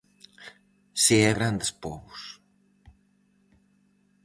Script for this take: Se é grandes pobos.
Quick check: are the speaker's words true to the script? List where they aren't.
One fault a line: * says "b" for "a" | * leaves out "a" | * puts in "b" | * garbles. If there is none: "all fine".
all fine